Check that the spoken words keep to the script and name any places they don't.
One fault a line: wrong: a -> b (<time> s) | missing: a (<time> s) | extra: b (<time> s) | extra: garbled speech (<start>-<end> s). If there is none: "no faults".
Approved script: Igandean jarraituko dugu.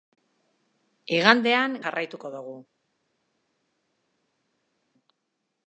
no faults